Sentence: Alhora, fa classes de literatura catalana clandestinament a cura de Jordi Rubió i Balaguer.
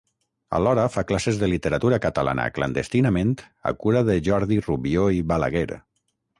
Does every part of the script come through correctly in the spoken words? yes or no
yes